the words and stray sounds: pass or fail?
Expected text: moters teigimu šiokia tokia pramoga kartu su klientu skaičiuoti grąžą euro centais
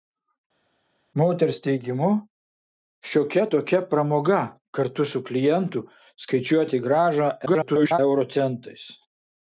fail